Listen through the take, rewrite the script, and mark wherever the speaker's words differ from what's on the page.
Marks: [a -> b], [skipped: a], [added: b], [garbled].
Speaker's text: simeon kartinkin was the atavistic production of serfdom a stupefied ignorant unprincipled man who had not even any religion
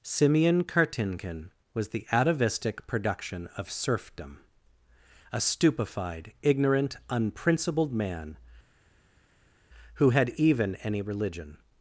simeon kartinkin was the atavistic production of serfdom a stupefied ignorant unprincipled man who had [skipped: not] even any religion